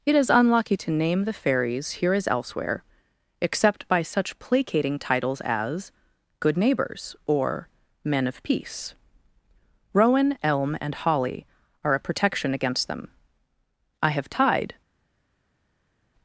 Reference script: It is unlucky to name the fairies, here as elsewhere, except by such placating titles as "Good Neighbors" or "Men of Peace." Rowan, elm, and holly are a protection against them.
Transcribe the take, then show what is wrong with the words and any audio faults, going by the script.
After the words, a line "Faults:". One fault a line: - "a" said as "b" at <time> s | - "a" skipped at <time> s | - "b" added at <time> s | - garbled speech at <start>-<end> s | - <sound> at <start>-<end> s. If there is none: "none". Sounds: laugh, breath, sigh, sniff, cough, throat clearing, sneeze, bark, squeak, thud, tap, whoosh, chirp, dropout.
It is unlucky to name the fairies, here as elsewhere, except by such placating titles as "Good Neighbors" or "Men of Peace." Rowan, elm, and holly are a protection against them. "I have tied
Faults:
- "I have tied" added at 14.0 s